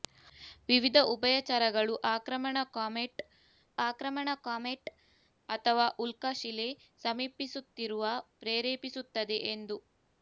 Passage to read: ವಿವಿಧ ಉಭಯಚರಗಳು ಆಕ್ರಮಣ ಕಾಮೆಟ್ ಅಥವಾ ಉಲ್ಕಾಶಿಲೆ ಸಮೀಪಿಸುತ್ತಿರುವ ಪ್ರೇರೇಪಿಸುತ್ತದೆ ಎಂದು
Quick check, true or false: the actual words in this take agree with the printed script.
false